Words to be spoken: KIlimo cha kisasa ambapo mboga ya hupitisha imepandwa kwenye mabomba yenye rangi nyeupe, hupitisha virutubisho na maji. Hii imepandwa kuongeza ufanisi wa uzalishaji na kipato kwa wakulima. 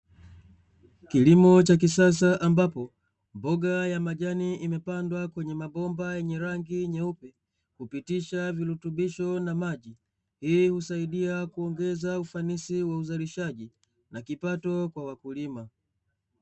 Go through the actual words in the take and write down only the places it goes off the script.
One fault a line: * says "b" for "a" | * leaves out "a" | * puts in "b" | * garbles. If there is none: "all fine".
* says "majani" for "hupitisha"
* says "husaidia" for "imepandwa"